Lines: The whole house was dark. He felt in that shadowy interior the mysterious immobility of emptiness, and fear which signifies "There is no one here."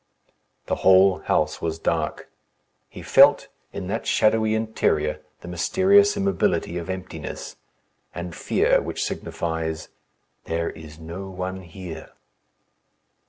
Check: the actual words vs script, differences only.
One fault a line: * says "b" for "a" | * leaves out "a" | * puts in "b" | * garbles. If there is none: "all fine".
all fine